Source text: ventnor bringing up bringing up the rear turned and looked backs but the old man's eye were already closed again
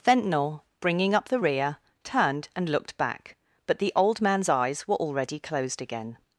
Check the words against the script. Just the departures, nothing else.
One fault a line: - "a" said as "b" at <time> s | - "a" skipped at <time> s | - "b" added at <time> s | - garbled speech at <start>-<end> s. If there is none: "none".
- "bringing up" skipped at 1.3 s
- "backs" said as "back" at 3.0 s
- "eye" said as "eyes" at 4.5 s